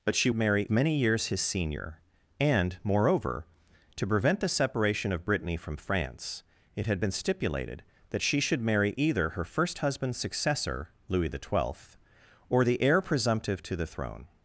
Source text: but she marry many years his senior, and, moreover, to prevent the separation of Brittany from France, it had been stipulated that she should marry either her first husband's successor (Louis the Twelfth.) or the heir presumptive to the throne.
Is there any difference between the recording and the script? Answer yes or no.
no